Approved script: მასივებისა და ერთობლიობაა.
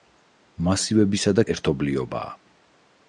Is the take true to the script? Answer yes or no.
yes